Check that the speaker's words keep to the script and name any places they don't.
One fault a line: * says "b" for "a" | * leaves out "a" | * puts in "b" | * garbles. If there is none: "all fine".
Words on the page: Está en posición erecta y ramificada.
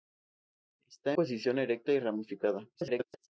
* leaves out "en"
* garbles